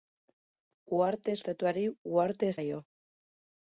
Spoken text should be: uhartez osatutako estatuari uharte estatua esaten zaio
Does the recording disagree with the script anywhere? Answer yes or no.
yes